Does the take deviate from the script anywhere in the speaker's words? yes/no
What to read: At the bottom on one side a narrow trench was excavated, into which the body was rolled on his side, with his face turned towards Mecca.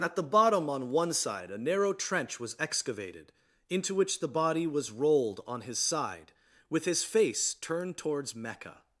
no